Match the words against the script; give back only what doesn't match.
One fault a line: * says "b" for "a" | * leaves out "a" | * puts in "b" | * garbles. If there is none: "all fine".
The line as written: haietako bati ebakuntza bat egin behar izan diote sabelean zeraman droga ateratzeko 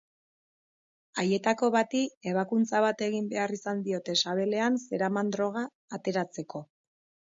all fine